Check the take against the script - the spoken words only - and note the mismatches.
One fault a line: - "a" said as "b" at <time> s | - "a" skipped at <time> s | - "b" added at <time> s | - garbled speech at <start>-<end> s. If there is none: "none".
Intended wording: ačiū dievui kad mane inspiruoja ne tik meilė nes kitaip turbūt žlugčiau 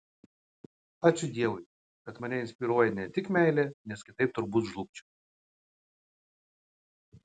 none